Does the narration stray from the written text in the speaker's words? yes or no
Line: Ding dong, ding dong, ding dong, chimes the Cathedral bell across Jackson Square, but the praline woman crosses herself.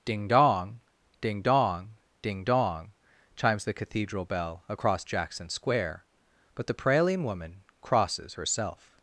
no